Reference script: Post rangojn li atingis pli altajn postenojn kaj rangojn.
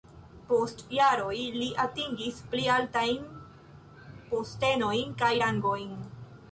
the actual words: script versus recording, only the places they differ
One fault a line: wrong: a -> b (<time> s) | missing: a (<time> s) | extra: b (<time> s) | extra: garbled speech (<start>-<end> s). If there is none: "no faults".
wrong: rangojn -> jaroj (1.0 s)